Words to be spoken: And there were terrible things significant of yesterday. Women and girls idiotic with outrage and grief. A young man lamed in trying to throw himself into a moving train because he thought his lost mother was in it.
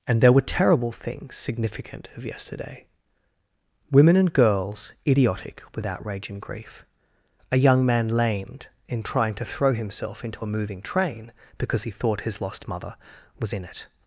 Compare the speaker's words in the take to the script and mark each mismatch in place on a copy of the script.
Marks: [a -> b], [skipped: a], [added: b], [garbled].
And there were terrible things significant of yesterday. Women and girls idiotic with outrage and grief. A young man lamed in trying to throw himself into a moving train because he thought his lost mother was in it.